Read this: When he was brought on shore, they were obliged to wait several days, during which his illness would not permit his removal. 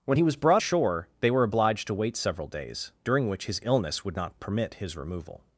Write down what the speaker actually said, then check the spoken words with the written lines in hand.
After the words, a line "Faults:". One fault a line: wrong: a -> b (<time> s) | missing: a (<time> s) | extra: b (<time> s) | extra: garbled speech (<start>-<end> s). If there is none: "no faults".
When he was brought shore, they were obliged to wait several days, during which his illness would not permit his removal.
Faults:
missing: on (0.6 s)